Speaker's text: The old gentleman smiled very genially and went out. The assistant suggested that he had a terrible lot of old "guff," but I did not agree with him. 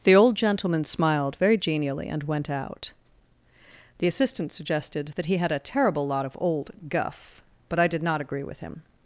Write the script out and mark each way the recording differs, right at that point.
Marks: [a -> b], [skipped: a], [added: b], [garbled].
The old gentleman smiled very genially and went out. The assistant suggested that he had a terrible lot of old "guff," but I did not agree with him.